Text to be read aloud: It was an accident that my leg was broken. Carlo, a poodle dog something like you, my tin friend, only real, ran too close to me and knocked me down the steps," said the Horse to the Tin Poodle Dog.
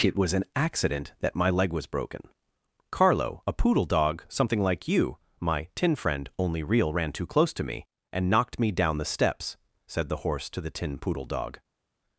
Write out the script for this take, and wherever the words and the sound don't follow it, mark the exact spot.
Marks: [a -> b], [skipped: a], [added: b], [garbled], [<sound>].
It was an accident that my leg was broken. Carlo, a poodle dog something like you, my tin friend, only real, ran too close to me and knocked me down the steps," said the Horse to the Tin Poodle Dog.